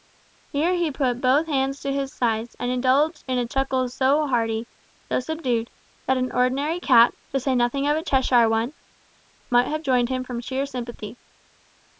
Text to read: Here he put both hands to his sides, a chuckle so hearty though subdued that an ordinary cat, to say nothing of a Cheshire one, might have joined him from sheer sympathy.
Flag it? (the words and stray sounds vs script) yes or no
yes